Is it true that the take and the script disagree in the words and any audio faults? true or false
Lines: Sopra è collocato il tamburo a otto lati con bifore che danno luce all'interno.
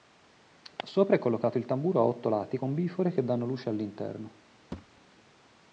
true